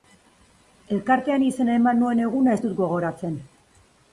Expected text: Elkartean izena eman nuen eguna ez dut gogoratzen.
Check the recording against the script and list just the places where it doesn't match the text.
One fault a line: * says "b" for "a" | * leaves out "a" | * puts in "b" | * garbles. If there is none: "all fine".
all fine